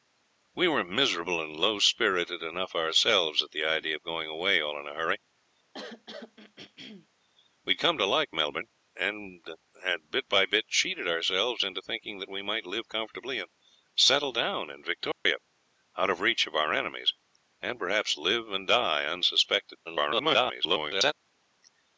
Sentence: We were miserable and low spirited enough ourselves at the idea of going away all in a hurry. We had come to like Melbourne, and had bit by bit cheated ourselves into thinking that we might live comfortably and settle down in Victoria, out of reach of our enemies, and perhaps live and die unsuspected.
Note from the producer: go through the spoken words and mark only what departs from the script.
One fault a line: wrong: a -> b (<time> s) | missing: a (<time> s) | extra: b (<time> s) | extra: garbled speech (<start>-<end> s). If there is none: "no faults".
extra: garbled speech (19.8-21.1 s)